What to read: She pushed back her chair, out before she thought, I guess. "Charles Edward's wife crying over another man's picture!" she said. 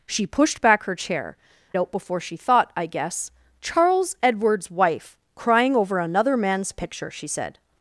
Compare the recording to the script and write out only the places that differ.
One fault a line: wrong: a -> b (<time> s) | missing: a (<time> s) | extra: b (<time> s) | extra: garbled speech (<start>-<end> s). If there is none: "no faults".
no faults